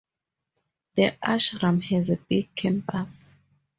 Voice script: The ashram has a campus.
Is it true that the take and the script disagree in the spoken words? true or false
true